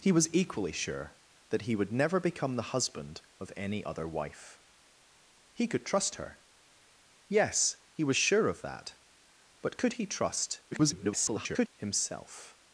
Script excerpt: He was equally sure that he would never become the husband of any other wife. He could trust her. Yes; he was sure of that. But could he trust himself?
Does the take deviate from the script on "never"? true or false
false